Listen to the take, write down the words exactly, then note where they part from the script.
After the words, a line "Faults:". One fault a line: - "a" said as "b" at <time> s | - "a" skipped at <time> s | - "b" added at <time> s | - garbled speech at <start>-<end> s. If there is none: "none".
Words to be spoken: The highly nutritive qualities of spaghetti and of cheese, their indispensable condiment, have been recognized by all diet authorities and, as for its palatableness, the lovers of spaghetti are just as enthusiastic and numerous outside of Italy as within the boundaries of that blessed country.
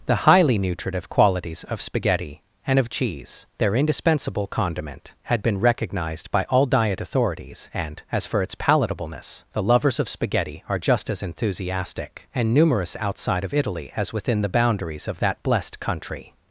The highly nutritive qualities of spaghetti and of cheese, their indispensable condiment, had been recognized by all diet authorities and, as for its palatableness, the lovers of spaghetti are just as enthusiastic and numerous outside of Italy as within the boundaries of that blessed country.
Faults:
- "have" said as "had" at 5.2 s